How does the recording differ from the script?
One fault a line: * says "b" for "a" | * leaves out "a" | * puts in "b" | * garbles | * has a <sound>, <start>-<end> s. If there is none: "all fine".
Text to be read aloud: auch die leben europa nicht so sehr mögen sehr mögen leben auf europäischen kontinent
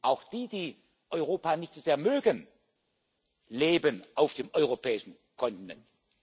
* says "die" for "leben"
* leaves out "sehr mögen"
* puts in "dem"